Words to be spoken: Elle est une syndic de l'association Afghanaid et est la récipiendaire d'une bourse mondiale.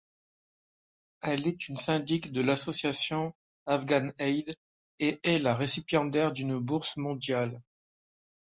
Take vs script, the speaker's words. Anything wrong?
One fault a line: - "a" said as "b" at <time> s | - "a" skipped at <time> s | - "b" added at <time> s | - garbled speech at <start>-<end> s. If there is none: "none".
none